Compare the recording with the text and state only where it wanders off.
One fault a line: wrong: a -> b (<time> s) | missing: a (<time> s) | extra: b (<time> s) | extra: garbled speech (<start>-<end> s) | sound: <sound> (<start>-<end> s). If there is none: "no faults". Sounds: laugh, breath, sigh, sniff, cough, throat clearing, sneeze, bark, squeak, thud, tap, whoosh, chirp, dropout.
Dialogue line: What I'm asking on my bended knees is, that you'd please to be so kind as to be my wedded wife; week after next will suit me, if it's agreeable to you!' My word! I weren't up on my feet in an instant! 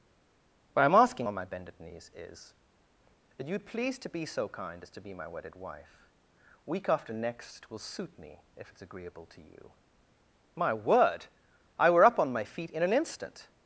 wrong: weren't -> were (11.9 s)